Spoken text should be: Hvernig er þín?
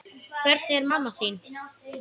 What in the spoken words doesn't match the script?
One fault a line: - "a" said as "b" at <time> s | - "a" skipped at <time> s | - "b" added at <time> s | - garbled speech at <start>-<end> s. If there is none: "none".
- "mamma" added at 0.9 s